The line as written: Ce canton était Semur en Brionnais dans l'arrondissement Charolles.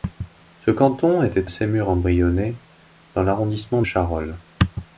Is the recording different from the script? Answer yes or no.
no